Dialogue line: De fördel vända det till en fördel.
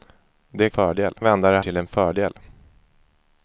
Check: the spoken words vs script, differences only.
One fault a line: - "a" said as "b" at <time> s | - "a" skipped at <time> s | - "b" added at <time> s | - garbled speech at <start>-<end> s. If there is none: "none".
none